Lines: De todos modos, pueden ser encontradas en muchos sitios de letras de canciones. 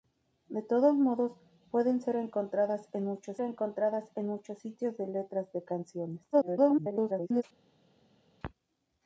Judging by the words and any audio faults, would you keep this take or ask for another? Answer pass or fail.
fail